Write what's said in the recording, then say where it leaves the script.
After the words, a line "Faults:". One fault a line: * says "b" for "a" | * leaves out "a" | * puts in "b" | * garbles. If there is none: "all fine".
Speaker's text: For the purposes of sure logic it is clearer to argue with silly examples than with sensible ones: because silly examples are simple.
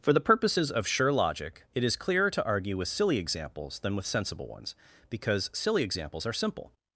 For the purposes of sure logic it is clearer to argue with silly examples than with sensible ones: because silly examples are simple.
Faults:
all fine